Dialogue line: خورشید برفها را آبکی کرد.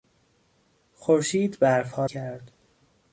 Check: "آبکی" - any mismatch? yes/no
yes